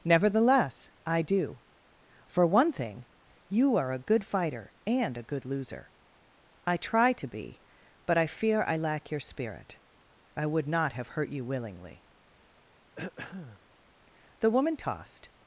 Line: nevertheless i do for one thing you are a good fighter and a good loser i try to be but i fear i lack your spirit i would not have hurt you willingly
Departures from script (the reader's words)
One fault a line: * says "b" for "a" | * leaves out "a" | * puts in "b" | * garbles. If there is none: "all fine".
* puts in "the woman tossed"